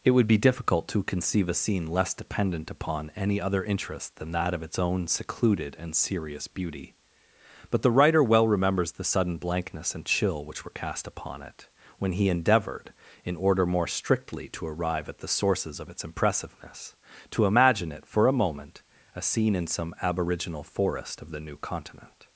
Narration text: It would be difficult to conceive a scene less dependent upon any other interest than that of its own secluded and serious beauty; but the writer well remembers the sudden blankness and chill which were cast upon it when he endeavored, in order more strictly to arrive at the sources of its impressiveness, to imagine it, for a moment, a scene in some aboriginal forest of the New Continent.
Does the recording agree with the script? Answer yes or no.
yes